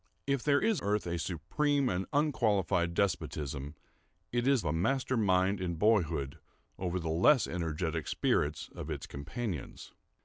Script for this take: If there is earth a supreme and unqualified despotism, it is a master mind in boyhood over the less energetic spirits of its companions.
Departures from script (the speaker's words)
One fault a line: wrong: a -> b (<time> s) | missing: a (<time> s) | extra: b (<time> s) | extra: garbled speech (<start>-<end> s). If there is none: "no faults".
no faults